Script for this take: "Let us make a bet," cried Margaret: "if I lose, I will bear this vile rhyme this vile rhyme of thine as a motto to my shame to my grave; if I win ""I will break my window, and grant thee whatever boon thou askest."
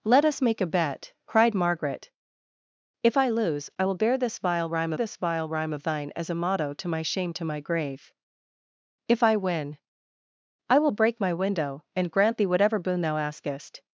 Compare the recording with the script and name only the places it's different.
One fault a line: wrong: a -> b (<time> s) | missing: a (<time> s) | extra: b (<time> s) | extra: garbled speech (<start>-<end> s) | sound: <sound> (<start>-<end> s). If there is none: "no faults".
no faults